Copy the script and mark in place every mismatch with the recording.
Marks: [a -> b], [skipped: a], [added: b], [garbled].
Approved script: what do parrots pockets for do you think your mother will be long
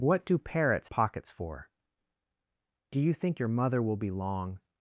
what do parrots pockets for do you think your mother will be long